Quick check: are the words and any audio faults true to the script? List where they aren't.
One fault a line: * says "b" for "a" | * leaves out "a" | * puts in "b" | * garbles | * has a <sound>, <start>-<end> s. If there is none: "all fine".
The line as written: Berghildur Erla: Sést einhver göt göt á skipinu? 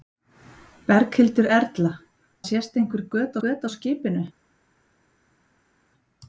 all fine